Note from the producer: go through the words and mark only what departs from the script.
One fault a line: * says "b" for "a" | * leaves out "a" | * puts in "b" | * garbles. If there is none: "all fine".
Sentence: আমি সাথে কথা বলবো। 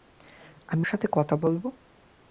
all fine